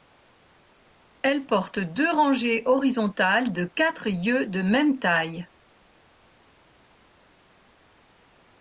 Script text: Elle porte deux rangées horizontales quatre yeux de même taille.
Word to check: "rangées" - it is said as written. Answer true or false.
true